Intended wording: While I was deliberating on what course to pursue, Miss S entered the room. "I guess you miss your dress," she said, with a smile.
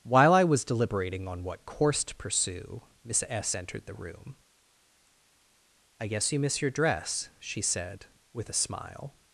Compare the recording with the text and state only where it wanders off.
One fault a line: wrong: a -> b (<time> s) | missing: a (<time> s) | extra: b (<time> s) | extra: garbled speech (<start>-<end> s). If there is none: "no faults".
no faults